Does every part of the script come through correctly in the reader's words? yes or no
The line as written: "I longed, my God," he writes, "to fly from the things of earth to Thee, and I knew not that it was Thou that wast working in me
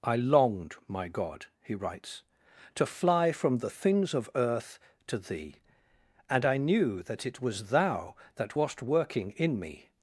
no